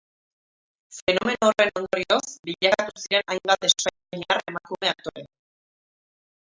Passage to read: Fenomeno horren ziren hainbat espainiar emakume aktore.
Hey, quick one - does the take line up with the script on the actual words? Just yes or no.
no